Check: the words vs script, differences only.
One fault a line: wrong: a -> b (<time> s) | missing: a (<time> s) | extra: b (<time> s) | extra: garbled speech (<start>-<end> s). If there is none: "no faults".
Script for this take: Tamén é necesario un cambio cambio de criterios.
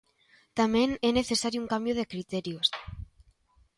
missing: cambio (2.0 s)